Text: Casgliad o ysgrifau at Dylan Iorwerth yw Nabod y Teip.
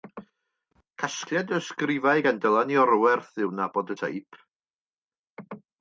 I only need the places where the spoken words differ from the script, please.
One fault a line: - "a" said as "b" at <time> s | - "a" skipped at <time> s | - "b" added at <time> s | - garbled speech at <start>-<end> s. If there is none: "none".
- "at" said as "gan" at 2.3 s